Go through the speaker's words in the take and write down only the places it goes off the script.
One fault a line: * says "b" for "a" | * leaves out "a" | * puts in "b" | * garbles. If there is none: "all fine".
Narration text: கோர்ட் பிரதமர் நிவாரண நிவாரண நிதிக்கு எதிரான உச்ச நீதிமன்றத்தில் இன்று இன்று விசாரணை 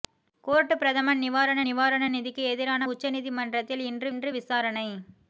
all fine